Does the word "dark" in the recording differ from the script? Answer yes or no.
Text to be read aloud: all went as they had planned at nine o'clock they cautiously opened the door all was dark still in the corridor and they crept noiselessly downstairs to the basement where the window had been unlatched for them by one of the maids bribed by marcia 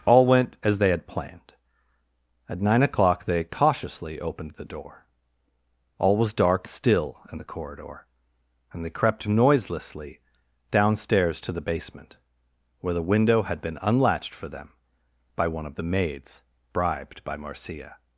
no